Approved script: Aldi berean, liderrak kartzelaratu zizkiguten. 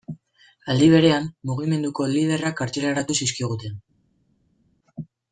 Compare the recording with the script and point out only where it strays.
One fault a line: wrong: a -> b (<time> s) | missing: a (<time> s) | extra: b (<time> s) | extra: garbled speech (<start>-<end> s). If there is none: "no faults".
extra: mugimenduko (1.5 s)